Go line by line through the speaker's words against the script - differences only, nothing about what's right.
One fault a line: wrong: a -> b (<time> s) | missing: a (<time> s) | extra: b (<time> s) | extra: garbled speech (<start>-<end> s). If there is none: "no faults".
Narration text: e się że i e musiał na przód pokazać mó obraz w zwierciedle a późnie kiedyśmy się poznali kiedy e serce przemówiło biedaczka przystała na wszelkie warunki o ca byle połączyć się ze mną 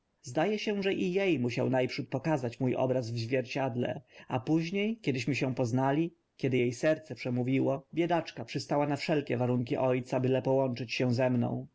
no faults